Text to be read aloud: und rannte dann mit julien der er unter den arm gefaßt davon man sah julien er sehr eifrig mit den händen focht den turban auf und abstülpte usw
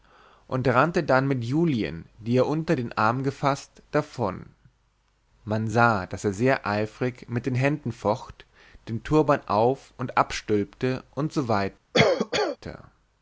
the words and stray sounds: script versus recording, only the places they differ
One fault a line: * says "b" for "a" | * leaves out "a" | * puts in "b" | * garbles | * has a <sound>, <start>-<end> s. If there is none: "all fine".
* says "die" for "der"
* says "daß" for "julien"
* has a cough, 11.9-12.6 s